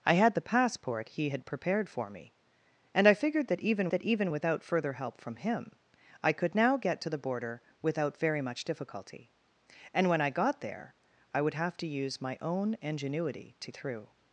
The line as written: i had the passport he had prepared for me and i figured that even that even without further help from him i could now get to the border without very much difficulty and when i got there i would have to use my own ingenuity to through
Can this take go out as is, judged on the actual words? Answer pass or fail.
pass